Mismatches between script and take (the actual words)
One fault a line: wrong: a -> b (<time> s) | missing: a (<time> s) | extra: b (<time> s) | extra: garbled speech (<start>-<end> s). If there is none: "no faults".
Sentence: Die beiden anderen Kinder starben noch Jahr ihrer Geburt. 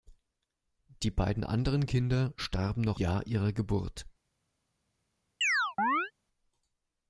no faults